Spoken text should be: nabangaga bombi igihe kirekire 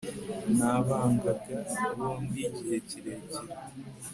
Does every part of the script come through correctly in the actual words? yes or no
yes